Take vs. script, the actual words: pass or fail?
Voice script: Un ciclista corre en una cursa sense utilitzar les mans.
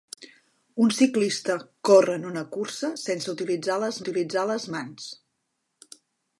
fail